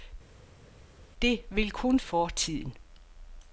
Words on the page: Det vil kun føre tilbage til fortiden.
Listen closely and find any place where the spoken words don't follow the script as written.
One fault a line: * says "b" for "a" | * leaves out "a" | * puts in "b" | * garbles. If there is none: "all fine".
* leaves out "føre tilbage til"